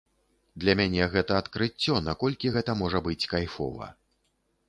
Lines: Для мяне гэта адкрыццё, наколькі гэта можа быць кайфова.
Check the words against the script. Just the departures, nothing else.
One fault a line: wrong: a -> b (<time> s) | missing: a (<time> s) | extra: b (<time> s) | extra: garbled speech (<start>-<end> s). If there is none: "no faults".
no faults